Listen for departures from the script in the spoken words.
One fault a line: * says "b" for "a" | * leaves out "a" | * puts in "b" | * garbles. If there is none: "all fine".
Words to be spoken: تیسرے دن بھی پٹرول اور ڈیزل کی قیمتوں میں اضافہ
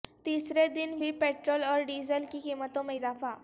all fine